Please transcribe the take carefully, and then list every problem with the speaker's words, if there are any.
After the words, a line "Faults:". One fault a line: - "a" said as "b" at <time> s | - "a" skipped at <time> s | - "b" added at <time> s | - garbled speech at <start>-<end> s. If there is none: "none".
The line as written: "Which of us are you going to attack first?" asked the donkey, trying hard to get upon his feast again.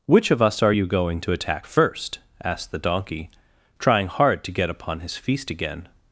"Which of us are you going to attack first?" asked the donkey, trying hard to get upon his feast again.
Faults:
none